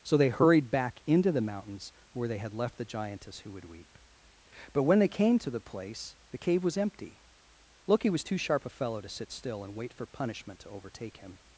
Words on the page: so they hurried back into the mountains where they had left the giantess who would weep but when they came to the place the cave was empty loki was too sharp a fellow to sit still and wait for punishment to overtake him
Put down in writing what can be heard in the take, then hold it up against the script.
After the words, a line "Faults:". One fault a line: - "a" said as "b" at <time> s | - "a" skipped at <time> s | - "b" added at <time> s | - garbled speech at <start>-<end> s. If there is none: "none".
so they hurried back into the mountains where they had left the giantess who would weep but when they came to the place the cave was empty loki was too sharp a fellow to sit still and wait for punishment to overtake him
Faults:
none